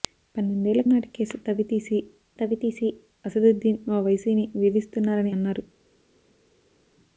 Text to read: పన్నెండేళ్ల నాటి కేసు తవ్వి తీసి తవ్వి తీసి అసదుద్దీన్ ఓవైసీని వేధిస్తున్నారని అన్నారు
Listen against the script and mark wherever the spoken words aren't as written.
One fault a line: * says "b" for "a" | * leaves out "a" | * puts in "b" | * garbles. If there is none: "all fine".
all fine